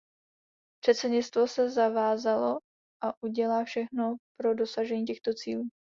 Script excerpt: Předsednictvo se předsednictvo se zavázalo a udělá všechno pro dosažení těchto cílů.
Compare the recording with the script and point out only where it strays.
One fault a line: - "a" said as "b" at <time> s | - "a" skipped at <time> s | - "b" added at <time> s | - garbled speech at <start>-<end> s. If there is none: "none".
- "předsednictvo se" skipped at 1.7 s